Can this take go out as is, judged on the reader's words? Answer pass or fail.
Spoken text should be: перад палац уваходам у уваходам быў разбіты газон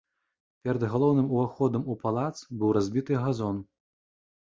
fail